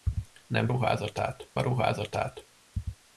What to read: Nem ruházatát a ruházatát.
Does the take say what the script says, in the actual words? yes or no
yes